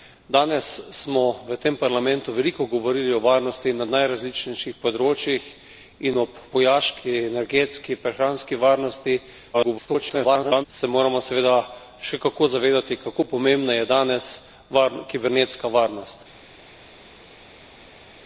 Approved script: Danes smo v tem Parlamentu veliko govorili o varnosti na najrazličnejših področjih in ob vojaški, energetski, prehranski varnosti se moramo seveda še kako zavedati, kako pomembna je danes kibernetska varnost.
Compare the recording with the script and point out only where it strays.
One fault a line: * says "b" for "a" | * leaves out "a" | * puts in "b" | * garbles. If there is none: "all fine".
* garbles